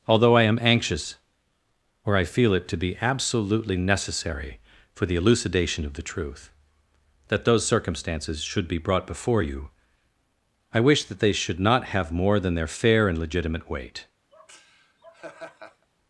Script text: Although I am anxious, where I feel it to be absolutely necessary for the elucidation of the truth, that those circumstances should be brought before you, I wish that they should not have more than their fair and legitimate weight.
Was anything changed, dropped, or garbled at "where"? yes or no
yes